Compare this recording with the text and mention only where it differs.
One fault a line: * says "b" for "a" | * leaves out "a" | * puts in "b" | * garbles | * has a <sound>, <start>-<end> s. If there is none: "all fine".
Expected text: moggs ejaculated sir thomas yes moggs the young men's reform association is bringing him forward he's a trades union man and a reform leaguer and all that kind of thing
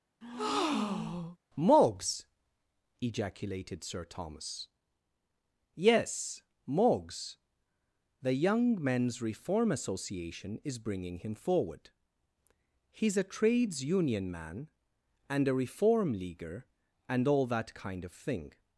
* has a breath, 0.2-1.4 s